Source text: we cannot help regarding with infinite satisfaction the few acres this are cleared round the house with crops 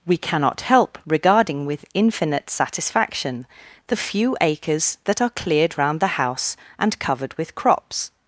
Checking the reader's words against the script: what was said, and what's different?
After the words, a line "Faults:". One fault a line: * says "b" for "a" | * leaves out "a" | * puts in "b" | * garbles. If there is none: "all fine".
we cannot help regarding with infinite satisfaction the few acres that are cleared round the house and covered with crops
Faults:
* says "that" for "this"
* puts in "and covered"